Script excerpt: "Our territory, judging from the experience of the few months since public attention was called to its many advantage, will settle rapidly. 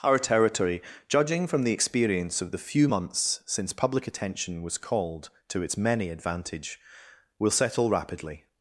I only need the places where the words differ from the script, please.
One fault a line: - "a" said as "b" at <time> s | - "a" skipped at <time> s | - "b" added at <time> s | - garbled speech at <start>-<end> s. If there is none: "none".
none